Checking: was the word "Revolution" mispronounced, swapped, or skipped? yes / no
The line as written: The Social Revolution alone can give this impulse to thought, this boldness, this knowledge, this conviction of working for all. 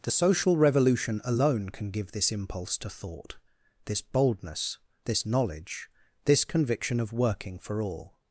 no